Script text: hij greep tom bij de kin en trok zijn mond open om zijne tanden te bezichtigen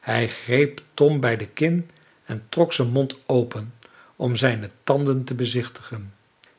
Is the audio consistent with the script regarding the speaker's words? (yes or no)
yes